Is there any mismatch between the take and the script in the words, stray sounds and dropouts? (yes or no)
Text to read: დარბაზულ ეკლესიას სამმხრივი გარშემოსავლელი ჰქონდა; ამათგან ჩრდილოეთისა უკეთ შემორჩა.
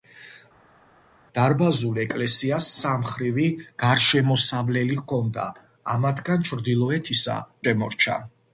yes